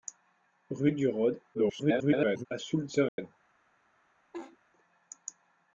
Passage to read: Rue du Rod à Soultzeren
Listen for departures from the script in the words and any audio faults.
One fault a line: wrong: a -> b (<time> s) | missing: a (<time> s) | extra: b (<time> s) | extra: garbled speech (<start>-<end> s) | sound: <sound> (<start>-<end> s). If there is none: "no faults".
extra: garbled speech (1.5-2.5 s)
sound: dropout (3.1-3.2 s)
sound: laugh (4.3-4.6 s)